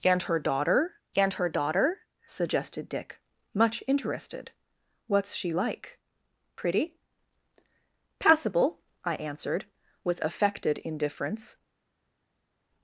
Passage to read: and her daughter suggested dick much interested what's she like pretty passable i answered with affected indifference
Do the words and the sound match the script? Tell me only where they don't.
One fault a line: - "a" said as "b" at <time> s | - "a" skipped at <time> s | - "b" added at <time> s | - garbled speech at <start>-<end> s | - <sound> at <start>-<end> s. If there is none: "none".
- "and her daughter" added at 1.2 s